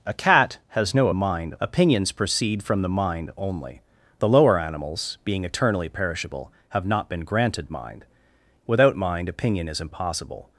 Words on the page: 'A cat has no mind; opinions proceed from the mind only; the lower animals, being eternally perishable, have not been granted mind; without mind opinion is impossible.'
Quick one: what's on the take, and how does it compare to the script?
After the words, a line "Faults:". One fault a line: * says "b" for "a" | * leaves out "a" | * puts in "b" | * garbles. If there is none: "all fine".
'A cat has no mind; opinions proceed from the mind only; the lower animals, being eternally perishable, have not been granted mind; without mind opinion is impossible.'
Faults:
all fine